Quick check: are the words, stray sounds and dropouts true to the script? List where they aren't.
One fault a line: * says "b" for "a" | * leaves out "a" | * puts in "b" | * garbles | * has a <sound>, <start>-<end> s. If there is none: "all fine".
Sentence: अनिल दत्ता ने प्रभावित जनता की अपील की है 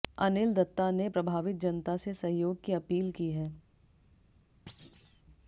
* puts in "से सहयोग"
* has a thud, 4.7-5.2 s